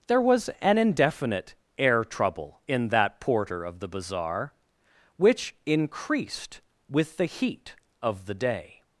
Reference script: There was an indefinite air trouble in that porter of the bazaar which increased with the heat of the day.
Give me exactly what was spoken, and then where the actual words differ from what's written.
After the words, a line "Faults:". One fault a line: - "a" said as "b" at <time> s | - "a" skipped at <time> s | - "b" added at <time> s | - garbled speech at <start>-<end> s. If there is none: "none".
There was an indefinite air trouble in that porter of the bazaar which increased with the heat of the day.
Faults:
none